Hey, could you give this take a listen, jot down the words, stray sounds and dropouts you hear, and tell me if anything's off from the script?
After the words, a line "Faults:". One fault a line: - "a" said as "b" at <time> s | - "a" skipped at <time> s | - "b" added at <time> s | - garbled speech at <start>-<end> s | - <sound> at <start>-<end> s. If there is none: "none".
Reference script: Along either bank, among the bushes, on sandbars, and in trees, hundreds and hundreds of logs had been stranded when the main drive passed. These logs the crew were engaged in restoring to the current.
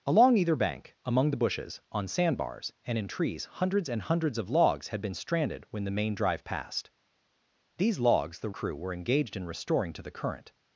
Along either bank, among the bushes, on sandbars, and in trees, hundreds and hundreds of logs had been stranded when the main drive passed. These logs the crew were engaged in restoring to the current.
Faults:
none